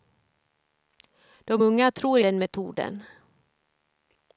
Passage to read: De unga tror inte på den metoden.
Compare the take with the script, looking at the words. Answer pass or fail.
fail